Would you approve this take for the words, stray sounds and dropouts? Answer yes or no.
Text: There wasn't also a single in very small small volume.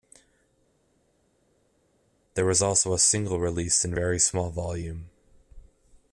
no